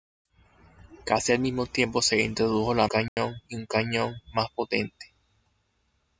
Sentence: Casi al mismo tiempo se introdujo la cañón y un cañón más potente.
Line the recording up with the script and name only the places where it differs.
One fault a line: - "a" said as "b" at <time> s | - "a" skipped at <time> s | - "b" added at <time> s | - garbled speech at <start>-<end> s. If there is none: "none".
none